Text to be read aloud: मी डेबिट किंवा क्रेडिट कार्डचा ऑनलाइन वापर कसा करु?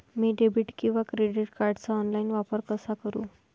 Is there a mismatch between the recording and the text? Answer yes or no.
no